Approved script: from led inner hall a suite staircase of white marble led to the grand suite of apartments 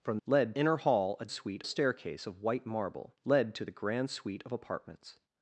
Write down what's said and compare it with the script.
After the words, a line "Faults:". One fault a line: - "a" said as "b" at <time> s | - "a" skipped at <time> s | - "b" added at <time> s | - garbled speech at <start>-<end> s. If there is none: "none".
from led inner hall a suite staircase of white marble led to the grand suite of apartments
Faults:
none